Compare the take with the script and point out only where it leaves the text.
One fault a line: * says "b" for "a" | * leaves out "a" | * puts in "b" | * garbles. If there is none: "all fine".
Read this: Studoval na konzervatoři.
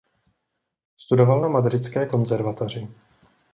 * puts in "madridské"